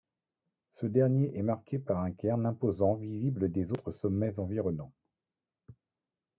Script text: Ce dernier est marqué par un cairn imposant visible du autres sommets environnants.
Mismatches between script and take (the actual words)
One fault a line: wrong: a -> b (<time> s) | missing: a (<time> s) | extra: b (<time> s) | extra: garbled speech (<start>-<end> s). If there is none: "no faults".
wrong: du -> des (3.5 s)